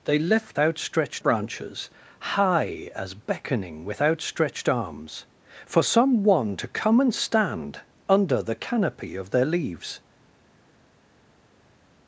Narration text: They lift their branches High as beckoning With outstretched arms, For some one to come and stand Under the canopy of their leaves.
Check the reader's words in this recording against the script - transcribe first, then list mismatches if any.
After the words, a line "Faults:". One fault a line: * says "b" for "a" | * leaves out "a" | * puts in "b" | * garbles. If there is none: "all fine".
They lift outstretched branches High as beckoning With outstretched arms, For some one to come and stand Under the canopy of their leaves.
Faults:
* says "outstretched" for "their"